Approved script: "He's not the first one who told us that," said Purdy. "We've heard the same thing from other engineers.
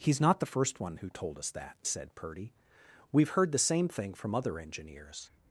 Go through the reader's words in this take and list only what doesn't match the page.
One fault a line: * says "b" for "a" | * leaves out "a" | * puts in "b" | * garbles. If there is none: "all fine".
all fine